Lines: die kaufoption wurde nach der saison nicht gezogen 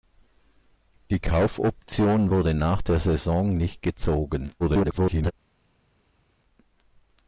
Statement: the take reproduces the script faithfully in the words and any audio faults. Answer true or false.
false